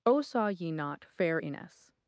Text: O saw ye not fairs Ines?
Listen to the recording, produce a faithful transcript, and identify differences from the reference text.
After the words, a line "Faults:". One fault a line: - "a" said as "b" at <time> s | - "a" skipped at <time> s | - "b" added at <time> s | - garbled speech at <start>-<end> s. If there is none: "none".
O saw ye not fair Ines?
Faults:
- "fairs" said as "fair" at 1.1 s